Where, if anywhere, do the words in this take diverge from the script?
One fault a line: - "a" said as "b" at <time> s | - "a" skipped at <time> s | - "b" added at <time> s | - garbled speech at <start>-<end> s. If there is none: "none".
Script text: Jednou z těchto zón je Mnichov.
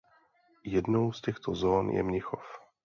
none